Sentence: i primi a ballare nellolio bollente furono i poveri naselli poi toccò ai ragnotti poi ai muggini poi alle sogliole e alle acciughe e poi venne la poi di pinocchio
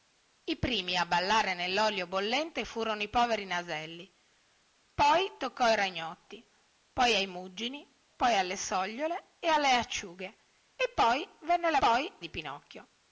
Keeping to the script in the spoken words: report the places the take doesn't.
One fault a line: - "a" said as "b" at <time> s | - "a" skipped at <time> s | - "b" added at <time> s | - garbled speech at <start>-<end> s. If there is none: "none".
none